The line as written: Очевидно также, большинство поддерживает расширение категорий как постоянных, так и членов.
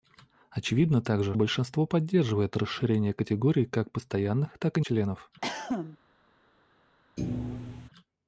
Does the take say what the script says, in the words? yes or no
yes